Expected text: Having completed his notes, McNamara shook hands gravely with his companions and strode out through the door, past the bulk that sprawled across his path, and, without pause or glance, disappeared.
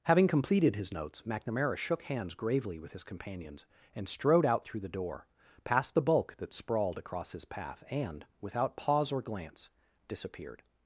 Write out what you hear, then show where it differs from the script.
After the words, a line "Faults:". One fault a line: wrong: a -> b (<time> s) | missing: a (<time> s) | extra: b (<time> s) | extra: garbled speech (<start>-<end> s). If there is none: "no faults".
Having completed his notes, McNamara shook hands gravely with his companions and strode out through the door, past the bulk that sprawled across his path, and, without pause or glance, disappeared.
Faults:
no faults